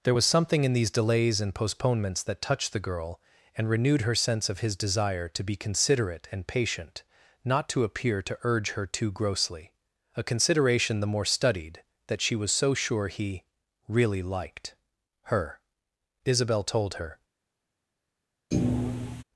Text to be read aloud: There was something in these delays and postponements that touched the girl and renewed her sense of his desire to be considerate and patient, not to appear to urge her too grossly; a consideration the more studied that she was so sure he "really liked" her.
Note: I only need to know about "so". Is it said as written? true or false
true